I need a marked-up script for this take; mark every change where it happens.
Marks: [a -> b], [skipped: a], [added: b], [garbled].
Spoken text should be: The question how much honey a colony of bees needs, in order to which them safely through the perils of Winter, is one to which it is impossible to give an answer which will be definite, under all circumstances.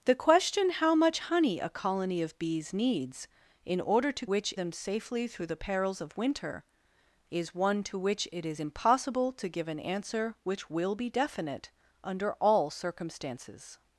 The question how much honey a colony of bees needs, in order to which them safely through the perils of Winter, is one to which it is impossible to give an answer which will be definite, under all circumstances.